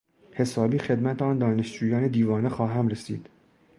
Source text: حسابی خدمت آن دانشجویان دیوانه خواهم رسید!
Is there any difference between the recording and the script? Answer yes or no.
no